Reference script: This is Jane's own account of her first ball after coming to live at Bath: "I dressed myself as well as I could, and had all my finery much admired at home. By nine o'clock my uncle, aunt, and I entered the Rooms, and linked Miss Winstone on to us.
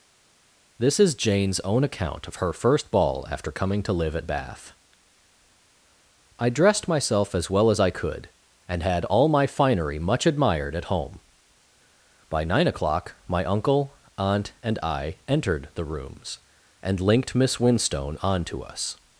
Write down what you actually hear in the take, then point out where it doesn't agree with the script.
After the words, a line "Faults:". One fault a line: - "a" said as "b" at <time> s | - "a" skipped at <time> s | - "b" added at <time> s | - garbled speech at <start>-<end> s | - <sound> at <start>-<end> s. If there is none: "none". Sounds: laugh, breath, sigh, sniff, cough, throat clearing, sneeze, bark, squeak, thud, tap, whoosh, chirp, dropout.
This is Jane's own account of her first ball after coming to live at Bath: "I dressed myself as well as I could, and had all my finery much admired at home. By nine o'clock my uncle, aunt, and I entered the Rooms, and linked Miss Winstone on to us.
Faults:
none